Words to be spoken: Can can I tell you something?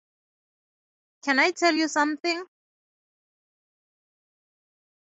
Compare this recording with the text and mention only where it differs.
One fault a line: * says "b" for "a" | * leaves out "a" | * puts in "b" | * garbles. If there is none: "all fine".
* leaves out "can"